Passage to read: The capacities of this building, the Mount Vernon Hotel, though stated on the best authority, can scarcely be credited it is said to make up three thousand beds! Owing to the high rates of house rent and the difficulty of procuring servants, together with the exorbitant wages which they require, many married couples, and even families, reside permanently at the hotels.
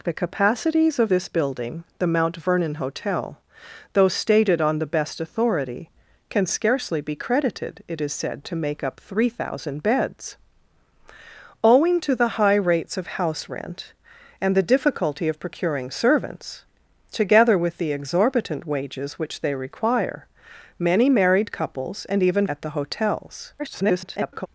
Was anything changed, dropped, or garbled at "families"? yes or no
yes